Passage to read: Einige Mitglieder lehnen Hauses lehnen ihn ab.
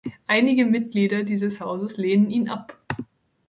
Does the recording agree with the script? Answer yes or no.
no